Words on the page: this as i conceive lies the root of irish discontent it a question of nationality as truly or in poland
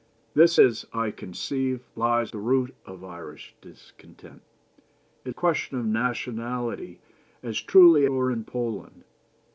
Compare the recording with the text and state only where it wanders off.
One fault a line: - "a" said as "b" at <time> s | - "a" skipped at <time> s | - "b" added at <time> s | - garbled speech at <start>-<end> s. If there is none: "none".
none